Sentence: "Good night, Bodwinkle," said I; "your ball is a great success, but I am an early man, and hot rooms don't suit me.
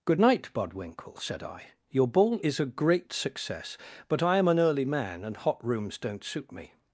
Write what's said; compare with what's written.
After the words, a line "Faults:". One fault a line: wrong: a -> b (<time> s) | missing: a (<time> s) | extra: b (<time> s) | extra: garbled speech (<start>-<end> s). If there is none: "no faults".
"Good night, Bodwinkle," said I; "your ball is a great success, but I am an early man, and hot rooms don't suit me.
Faults:
no faults